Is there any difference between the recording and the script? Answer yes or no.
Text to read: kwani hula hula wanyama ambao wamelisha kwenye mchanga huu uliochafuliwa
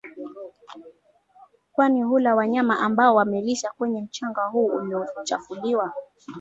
yes